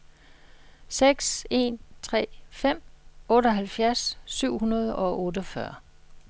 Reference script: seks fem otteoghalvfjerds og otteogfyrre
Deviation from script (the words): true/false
true